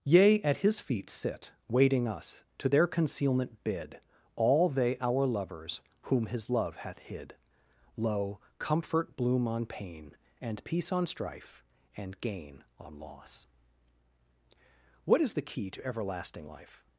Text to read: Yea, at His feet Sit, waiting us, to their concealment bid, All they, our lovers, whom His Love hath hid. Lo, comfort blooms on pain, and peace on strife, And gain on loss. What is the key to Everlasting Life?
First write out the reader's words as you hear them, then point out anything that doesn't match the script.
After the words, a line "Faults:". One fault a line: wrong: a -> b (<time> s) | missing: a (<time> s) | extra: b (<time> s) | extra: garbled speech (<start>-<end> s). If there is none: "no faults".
Yea, at His feet Sit, waiting us, to their concealment bid, All they, our lovers, whom His Love hath hid. Lo, comfort bloom on pain, and peace on strife, And gain on loss. What is the key to Everlasting Life?
Faults:
wrong: blooms -> bloom (9.2 s)